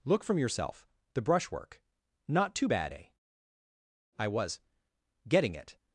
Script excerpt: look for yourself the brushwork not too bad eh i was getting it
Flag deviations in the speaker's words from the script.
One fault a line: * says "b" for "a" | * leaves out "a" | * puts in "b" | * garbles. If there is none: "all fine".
* says "from" for "for"